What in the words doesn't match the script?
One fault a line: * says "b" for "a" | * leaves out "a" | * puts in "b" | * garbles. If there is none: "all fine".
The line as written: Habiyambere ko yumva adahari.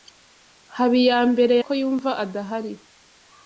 all fine